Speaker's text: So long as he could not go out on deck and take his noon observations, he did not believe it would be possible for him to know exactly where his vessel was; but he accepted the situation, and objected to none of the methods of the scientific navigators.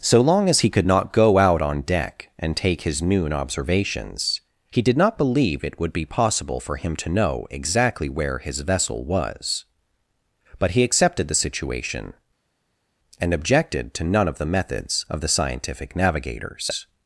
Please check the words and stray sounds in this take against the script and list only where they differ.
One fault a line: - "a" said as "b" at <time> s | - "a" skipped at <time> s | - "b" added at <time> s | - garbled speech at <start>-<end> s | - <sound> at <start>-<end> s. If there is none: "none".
none